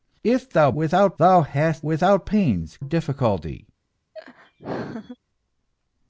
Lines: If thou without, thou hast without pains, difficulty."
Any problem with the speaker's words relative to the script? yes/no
no